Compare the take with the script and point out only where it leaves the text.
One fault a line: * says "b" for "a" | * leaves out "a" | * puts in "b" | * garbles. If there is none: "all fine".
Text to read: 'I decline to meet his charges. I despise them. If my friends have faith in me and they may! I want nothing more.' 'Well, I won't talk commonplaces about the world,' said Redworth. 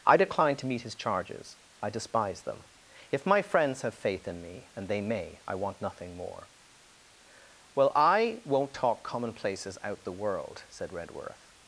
* says "out" for "about"